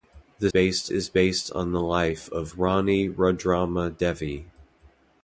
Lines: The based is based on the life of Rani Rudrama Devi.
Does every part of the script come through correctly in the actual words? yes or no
yes